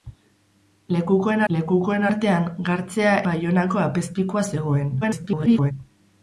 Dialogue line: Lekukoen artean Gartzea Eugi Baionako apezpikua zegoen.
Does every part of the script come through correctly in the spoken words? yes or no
no